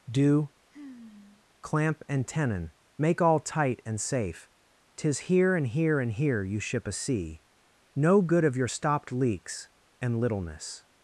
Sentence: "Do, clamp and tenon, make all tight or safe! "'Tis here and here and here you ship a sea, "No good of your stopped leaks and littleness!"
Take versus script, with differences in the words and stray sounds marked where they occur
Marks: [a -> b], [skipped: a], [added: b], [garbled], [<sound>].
"Do, [sigh] clamp and tenon, make all tight [or -> and] safe! "'Tis here and here and here you ship a sea, "No good of your stopped leaks and littleness!"